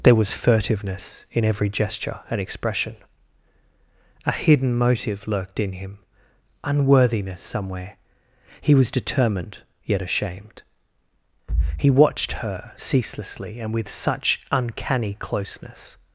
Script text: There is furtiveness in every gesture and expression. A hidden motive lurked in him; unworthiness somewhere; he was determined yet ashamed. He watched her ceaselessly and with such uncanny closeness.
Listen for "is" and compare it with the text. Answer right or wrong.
wrong